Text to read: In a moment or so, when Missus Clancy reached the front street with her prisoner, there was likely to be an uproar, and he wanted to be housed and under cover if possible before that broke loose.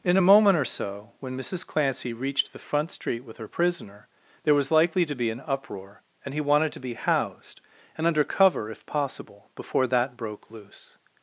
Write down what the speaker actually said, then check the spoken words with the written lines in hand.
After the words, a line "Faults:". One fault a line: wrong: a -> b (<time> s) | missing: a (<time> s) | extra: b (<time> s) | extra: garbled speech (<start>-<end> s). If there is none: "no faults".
In a moment or so, when Missus Clancy reached the front street with her prisoner, there was likely to be an uproar, and he wanted to be housed and under cover if possible before that broke loose.
Faults:
no faults